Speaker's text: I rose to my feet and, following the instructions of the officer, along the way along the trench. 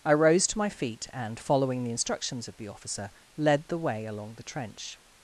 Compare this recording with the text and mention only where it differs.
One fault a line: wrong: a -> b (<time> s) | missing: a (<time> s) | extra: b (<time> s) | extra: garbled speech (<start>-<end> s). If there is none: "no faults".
wrong: along -> led (3.4 s)